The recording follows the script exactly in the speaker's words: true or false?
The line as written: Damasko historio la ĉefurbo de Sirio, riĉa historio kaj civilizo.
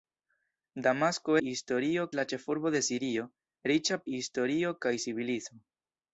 true